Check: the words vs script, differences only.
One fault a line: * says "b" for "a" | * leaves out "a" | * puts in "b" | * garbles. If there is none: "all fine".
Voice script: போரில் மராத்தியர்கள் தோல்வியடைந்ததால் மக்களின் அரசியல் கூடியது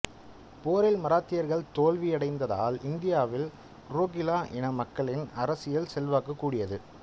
* puts in "இந்தியாவில் ரோகில்லா இன"
* puts in "செல்வாக்கு"